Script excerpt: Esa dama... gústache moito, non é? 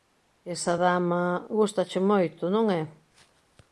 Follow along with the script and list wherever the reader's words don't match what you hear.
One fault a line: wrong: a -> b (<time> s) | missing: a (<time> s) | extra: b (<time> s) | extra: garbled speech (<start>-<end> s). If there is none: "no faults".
no faults